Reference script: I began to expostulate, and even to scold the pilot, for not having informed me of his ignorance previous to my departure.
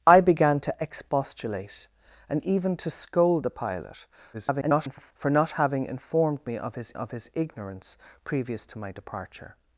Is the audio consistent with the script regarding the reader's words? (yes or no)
no